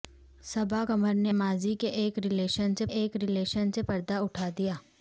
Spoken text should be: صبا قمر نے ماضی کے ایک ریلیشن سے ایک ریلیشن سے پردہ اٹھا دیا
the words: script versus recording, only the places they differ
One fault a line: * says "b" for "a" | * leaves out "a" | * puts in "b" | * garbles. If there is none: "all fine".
all fine